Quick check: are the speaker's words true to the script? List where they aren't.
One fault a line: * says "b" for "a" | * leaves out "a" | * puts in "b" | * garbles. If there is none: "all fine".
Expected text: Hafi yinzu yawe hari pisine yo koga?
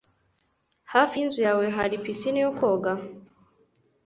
all fine